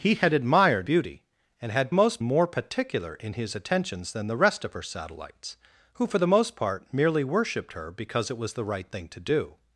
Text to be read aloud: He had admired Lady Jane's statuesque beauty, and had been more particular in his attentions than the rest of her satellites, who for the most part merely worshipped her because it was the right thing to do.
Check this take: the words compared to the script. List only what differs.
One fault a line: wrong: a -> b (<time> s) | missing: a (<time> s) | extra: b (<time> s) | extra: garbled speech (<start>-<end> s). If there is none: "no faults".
missing: Lady Jane's statuesque (0.9 s)
wrong: been -> most (1.9 s)